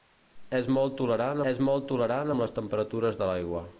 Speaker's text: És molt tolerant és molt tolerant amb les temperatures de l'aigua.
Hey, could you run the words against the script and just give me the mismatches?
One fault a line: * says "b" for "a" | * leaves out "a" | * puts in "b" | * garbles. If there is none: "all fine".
all fine